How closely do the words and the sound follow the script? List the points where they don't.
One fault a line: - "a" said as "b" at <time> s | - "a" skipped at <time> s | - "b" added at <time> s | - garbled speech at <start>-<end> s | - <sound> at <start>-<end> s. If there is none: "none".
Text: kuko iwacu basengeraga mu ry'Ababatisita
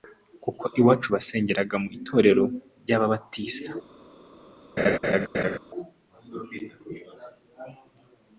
- "itorero" added at 2.0 s
- laugh at 4.8-5.6 s